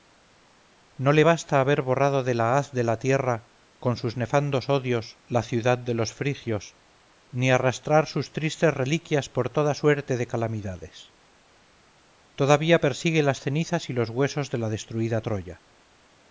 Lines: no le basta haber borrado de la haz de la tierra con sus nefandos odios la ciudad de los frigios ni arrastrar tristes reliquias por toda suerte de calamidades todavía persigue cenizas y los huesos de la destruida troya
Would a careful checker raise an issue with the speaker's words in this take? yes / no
yes